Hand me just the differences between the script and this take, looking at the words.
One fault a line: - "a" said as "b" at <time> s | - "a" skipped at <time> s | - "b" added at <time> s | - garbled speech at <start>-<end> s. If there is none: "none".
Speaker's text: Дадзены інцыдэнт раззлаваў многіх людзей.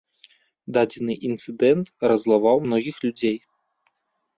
none